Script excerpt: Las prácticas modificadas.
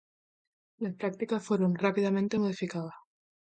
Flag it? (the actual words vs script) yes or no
yes